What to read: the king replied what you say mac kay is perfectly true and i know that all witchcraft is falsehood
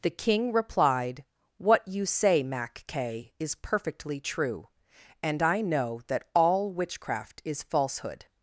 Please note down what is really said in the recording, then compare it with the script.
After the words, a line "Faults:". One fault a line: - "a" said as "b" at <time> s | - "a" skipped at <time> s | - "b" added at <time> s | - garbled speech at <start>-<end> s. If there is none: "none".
the king replied what you say mac kay is perfectly true and i know that all witchcraft is falsehood
Faults:
none